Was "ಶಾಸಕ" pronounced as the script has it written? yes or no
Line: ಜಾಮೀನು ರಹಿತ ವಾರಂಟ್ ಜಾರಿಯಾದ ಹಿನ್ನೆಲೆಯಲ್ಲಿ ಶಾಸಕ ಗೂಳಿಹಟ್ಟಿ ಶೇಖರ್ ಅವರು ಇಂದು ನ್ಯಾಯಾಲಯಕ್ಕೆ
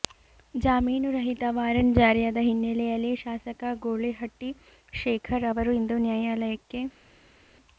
yes